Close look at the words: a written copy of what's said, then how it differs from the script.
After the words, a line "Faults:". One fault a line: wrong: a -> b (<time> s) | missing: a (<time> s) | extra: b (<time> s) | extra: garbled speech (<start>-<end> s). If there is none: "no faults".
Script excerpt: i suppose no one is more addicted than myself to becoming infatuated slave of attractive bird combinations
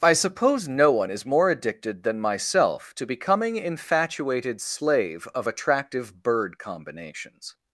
i suppose no one is more addicted than myself to becoming infatuated slave of attractive bird combinations
Faults:
no faults